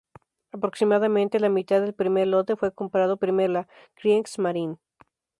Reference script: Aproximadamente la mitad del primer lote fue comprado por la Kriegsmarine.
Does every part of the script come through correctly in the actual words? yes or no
no